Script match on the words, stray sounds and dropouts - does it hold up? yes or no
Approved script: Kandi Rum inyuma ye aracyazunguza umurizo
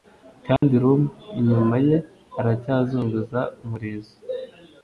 no